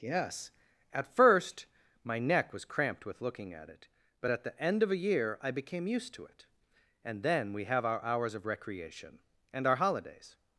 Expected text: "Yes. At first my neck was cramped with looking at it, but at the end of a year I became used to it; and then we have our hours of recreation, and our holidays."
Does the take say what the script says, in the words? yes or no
yes